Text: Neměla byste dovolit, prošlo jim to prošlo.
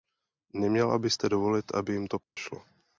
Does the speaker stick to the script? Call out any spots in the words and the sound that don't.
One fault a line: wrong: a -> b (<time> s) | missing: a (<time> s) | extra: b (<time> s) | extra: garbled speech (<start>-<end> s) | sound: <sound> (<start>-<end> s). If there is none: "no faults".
wrong: prošlo -> aby (1.8 s)
sound: dropout (2.2-2.4 s)